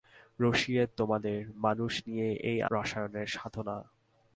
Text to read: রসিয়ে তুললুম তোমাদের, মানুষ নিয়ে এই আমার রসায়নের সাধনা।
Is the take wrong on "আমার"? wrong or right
wrong